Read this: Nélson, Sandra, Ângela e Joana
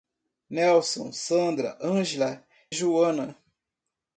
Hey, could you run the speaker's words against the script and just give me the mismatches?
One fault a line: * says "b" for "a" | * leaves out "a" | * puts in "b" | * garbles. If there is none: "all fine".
* leaves out "e"